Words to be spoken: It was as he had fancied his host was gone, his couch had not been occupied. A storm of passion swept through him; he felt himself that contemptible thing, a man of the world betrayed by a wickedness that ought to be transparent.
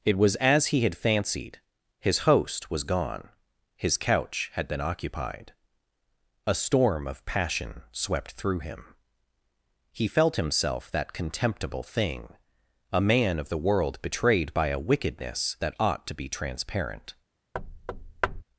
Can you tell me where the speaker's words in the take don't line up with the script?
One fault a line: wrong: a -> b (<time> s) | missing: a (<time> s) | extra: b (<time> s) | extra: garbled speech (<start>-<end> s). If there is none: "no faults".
missing: not (4.7 s)